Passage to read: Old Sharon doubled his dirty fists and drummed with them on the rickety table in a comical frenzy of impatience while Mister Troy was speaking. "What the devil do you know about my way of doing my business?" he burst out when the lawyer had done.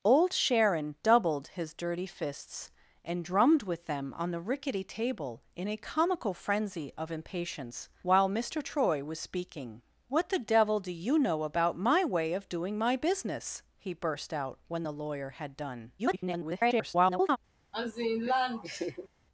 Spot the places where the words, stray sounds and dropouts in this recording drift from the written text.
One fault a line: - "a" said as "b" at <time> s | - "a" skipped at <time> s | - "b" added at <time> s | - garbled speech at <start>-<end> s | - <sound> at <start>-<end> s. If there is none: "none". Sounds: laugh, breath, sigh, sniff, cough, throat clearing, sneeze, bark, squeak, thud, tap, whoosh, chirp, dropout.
- garbled speech at 16.0-17.4 s
- laugh at 17.7-19.1 s